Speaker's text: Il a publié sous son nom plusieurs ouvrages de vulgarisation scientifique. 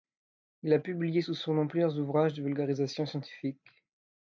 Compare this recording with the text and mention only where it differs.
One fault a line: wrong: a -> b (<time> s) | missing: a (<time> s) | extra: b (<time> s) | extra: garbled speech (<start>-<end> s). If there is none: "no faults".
no faults